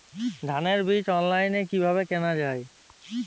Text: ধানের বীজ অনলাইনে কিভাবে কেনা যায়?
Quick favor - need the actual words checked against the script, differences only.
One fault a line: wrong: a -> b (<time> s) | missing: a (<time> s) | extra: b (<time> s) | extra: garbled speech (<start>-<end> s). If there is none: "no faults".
no faults